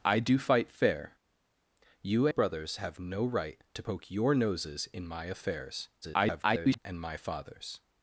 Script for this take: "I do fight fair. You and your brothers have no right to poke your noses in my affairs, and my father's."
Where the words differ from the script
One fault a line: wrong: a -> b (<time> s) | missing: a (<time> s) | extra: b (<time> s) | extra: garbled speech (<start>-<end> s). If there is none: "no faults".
missing: and your (2.3 s)
extra: garbled speech (6.0-6.8 s)